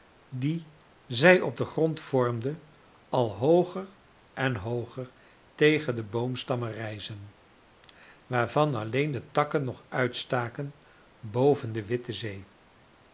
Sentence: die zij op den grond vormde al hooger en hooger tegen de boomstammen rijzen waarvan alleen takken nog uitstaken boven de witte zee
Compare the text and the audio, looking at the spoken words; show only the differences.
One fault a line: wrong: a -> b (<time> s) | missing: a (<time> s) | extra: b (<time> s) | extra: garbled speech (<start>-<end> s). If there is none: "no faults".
extra: de (9.1 s)